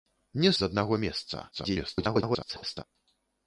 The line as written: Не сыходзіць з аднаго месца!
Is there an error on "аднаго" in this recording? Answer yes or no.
no